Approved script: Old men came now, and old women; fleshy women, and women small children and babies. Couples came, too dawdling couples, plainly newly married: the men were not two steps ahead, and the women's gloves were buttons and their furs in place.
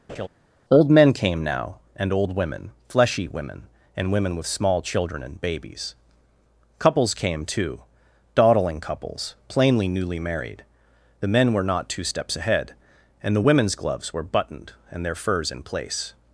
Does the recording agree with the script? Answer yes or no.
no